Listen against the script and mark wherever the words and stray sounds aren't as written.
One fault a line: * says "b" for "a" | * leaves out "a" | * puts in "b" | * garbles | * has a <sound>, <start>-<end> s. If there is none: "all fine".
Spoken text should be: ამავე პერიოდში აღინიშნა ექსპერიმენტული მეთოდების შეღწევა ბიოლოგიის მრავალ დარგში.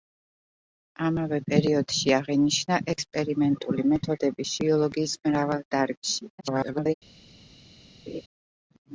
* leaves out "შეღწევა"
* garbles
* has a laugh, 8.1-8.2 s